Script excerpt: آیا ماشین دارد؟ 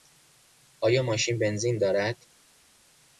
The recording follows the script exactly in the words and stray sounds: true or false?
false